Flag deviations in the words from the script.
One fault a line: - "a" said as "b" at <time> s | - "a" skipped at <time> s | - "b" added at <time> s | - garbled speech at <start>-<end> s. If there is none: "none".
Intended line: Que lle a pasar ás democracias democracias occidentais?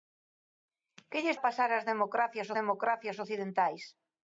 none